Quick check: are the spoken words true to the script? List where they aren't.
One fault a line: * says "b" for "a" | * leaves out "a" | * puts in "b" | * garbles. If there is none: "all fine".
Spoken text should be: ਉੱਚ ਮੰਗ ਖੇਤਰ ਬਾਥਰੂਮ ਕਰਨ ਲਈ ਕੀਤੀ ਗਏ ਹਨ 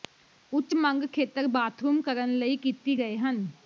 all fine